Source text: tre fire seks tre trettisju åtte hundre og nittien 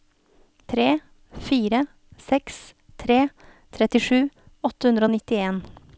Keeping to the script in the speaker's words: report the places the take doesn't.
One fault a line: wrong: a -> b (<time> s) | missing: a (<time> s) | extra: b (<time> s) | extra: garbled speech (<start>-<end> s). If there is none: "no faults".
no faults